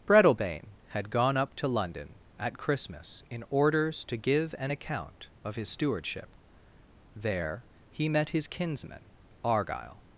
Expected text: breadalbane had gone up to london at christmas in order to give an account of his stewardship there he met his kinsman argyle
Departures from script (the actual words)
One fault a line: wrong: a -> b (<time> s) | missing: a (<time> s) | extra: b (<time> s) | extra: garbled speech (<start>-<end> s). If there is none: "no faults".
wrong: order -> orders (3.5 s)